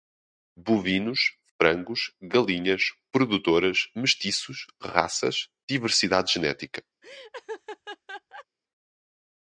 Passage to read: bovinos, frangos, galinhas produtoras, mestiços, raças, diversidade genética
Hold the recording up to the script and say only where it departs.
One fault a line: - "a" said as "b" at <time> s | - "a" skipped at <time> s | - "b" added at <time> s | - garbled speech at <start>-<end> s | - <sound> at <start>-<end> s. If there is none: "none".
- laugh at 7.0-8.5 s